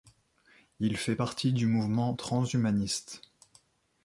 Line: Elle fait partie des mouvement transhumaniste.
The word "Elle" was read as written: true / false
false